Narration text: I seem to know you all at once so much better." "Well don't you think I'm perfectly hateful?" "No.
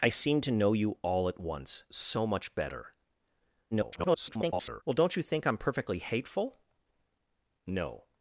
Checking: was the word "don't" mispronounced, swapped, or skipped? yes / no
no